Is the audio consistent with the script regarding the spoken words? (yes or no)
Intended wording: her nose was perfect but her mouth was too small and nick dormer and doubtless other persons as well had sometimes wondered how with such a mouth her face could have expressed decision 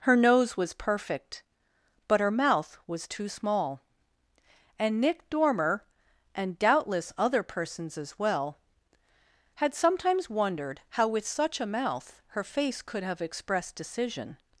yes